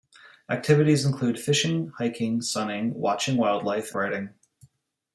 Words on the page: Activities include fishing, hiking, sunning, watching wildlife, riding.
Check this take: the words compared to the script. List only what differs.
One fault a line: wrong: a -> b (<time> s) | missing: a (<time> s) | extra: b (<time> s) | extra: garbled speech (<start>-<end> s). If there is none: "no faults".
no faults